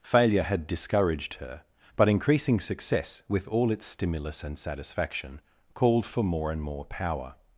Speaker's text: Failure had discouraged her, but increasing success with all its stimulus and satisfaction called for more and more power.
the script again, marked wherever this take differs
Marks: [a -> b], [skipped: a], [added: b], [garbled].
Failure had discouraged her, but increasing success with all its stimulus and satisfaction called for more and more power.